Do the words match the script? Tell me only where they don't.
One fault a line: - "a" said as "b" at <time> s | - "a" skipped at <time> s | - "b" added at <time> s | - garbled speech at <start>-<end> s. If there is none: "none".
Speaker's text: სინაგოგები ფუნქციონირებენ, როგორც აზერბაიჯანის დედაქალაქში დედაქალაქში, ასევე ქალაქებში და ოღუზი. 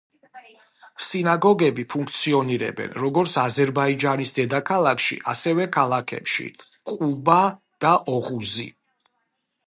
- "დედაქალაქში" skipped at 5.2 s
- "ყუბა" added at 6.9 s